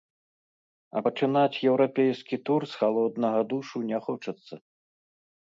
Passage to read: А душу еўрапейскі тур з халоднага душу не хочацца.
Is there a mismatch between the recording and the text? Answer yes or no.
yes